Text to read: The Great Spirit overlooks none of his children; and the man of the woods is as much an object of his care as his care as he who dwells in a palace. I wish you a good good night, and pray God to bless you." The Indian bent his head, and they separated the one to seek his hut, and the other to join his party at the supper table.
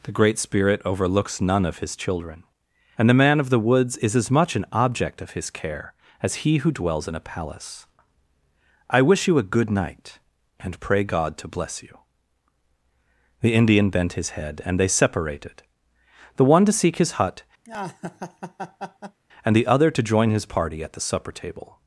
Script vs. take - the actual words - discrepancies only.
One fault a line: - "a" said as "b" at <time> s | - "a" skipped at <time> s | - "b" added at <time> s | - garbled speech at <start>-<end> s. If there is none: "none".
- "his care as" skipped at 6.4 s
- "good" skipped at 9.7 s